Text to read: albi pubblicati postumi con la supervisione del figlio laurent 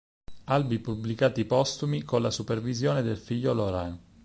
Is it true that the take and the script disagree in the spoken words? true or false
false